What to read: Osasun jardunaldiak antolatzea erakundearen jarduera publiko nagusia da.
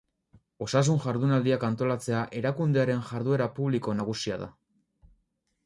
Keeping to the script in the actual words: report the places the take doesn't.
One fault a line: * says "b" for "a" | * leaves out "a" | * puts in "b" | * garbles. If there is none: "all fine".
all fine